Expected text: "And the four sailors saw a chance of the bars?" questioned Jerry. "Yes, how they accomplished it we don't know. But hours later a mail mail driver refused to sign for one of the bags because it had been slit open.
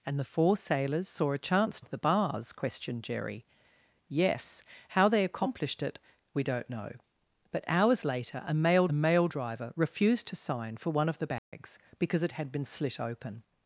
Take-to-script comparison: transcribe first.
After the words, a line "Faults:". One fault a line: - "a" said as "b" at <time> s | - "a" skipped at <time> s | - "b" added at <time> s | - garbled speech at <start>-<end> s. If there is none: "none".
"And the four sailors saw a chance of the bars?" questioned Jerry. "Yes, how they accomplished it we don't know. But hours later a mail mail driver refused to sign for one of the bags because it had been slit open.
Faults:
none